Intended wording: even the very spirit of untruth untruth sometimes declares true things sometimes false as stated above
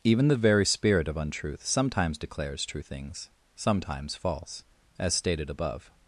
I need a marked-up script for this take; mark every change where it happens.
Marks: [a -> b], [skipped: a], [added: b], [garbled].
even the very spirit of untruth [skipped: untruth] sometimes declares true things sometimes false as stated above